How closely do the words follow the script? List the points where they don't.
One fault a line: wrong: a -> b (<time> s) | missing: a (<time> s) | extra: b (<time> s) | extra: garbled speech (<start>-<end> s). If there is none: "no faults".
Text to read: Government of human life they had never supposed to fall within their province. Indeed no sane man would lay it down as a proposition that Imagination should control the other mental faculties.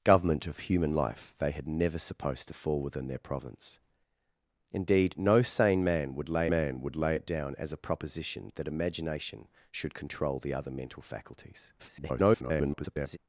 extra: man would lay (6.5 s)
extra: garbled speech (11.8-13.2 s)